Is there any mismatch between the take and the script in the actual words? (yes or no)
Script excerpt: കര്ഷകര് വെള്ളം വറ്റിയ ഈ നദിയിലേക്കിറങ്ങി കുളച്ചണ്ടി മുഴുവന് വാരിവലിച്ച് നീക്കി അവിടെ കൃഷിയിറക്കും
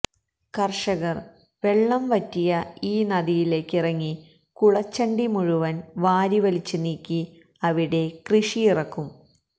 no